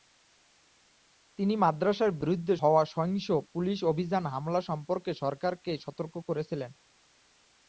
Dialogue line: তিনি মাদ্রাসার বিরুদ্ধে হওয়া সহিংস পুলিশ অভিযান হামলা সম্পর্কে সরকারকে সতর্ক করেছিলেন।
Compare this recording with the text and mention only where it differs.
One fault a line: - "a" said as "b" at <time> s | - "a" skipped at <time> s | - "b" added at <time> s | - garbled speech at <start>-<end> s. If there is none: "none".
none